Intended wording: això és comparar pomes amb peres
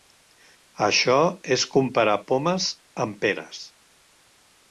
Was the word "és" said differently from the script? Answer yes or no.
no